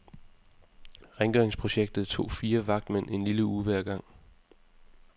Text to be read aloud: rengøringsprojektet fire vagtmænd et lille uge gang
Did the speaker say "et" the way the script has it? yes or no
no